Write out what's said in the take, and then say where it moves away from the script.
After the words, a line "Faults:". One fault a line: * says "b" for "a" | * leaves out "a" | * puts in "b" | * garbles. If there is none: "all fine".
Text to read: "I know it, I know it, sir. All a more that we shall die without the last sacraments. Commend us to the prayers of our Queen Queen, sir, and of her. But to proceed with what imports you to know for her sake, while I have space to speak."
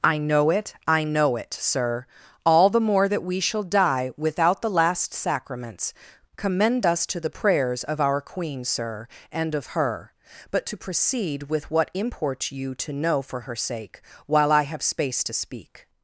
"I know it, I know it, sir. All the more that we shall die without the last sacraments. Commend us to the prayers of our Queen, sir, and of her. But to proceed with what imports you to know for her sake, while I have space to speak."
Faults:
* says "the" for "a"
* leaves out "Queen"